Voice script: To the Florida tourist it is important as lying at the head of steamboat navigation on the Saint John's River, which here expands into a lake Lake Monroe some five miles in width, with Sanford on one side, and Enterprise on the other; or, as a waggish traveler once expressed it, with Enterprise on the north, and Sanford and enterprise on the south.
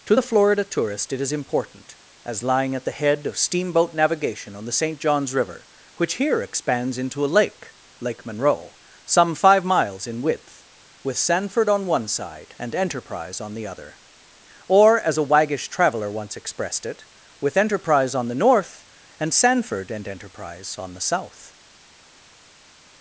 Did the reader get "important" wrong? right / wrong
right